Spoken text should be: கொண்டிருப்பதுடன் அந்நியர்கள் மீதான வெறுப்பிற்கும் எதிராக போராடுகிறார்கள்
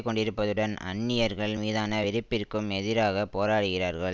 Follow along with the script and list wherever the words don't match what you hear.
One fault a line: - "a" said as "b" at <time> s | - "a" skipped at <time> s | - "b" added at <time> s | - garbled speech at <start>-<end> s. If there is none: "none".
none